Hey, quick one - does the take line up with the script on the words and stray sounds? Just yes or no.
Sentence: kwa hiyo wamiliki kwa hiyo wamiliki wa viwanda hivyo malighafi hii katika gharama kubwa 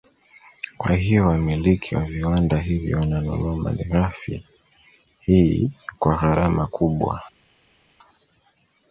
no